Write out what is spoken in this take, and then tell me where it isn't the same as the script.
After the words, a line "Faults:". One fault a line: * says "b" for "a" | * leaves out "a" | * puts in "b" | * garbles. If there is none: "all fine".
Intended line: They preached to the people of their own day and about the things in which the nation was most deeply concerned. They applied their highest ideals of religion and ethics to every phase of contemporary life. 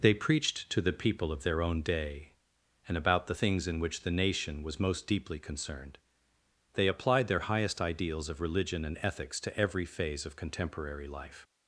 They preached to the people of their own day and about the things in which the nation was most deeply concerned. They applied their highest ideals of religion and ethics to every phase of contemporary life.
Faults:
all fine